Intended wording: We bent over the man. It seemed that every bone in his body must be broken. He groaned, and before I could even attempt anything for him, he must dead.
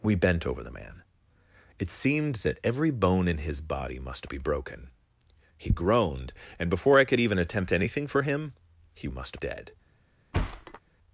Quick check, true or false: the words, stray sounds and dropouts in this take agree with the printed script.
false